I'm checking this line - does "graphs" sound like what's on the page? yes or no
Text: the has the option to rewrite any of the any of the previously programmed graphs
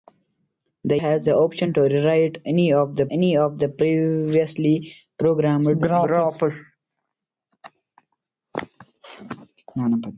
yes